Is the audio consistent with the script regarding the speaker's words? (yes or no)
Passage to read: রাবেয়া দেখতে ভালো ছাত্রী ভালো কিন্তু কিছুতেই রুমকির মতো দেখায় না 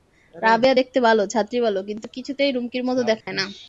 yes